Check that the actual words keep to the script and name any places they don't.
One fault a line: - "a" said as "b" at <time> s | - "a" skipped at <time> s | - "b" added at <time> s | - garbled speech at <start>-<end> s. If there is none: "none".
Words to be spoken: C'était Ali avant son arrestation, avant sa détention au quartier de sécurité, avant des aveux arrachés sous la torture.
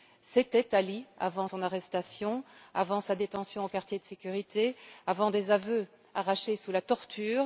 none